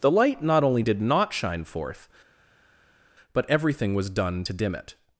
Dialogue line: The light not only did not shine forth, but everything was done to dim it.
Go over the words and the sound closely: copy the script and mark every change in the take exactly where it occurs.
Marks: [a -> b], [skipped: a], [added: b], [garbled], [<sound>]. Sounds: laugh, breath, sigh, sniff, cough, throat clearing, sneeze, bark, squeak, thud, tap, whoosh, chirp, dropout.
The light not only did not shine forth, but everything was done to dim it.